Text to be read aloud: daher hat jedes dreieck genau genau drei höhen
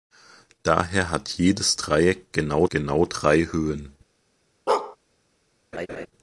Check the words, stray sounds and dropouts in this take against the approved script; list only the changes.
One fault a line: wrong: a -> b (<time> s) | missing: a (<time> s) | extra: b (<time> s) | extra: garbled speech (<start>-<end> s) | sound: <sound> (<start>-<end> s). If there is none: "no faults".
sound: bark (4.7-5.0 s)
sound: laugh (5.7-6.1 s)